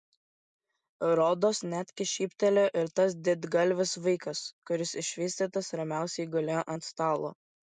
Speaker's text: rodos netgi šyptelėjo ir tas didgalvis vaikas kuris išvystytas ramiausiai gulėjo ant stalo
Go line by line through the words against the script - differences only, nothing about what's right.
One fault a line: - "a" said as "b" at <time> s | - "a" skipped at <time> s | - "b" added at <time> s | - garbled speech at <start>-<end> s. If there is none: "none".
none